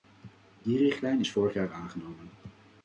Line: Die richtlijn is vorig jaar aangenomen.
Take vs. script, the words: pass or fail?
pass